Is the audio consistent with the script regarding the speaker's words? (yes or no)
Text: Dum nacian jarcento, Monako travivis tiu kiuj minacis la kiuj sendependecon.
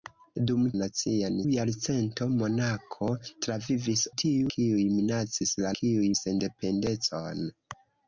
yes